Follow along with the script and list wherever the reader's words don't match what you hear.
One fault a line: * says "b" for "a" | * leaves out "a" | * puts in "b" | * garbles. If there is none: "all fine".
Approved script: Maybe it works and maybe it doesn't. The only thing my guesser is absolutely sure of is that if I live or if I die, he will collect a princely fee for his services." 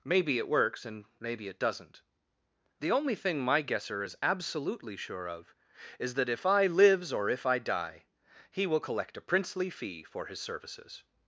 * says "lives" for "live"